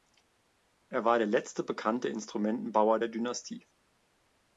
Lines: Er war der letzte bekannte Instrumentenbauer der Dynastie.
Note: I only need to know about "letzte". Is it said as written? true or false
true